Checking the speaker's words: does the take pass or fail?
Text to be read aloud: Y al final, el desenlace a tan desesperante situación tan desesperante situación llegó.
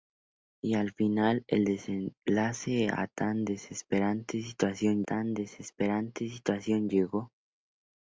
pass